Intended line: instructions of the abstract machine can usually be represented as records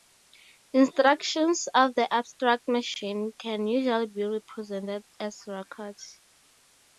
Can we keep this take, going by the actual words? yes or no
yes